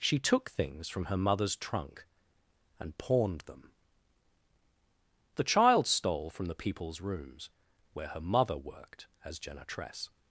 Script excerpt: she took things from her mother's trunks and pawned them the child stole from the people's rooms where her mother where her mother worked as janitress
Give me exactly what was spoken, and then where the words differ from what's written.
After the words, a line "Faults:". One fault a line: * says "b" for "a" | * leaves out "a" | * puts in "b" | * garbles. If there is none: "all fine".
she took things from her mother's trunk and pawned them the child stole from the people's rooms where her mother worked as janitress
Faults:
* says "trunk" for "trunks"
* leaves out "where her mother"